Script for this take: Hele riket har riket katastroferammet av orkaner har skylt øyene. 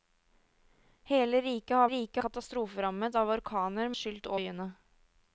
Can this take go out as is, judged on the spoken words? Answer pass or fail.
pass